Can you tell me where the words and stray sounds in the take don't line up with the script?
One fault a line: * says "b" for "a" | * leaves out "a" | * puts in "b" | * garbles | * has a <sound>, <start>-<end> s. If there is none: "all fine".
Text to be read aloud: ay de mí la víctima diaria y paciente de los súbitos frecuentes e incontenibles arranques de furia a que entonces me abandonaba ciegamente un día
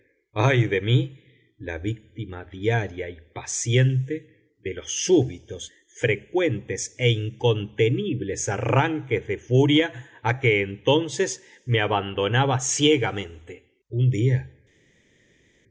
all fine